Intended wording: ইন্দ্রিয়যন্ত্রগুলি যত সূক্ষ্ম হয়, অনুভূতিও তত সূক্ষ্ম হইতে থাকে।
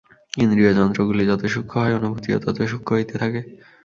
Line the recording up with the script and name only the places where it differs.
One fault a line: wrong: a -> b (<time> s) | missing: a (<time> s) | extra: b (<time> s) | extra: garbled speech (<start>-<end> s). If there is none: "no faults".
no faults